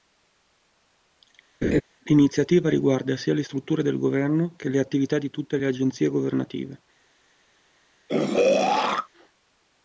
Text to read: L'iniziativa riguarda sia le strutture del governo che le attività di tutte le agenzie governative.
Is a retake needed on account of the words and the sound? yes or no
yes